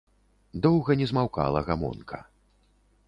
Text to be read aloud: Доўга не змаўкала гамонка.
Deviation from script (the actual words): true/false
false